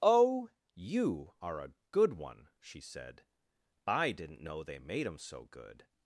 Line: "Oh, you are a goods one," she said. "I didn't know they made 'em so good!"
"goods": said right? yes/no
no